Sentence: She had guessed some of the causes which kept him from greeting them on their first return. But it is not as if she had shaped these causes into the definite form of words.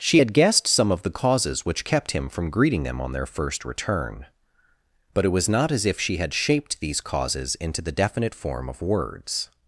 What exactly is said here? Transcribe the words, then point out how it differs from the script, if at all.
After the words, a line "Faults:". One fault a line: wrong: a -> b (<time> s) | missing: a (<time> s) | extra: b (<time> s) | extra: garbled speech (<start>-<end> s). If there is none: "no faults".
She had guessed some of the causes which kept him from greeting them on their first return. But it was not as if she had shaped these causes into the definite form of words.
Faults:
wrong: is -> was (5.3 s)